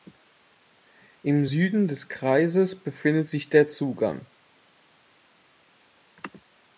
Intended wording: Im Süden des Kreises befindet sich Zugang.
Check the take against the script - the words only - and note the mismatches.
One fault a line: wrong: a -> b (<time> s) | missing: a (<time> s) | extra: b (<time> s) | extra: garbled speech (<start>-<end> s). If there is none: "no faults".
extra: der (3.5 s)